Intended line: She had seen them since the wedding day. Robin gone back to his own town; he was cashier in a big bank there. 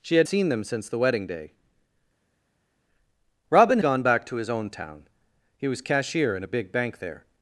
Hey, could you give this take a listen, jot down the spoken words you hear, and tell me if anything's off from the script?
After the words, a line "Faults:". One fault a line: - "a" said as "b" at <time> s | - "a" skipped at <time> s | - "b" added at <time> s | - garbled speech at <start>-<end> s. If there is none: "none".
She had seen them since the wedding day. Robin gone back to his own town; he was cashier in a big bank there.
Faults:
none